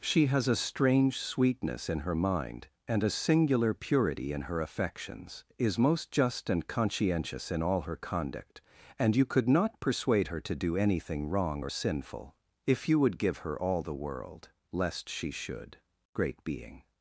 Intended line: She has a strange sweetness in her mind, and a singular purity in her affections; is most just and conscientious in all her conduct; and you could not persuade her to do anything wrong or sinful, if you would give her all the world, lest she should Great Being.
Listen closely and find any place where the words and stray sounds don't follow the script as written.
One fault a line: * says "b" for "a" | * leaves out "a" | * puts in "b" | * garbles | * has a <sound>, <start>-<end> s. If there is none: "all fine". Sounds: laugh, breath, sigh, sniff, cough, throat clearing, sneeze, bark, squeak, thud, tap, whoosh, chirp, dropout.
all fine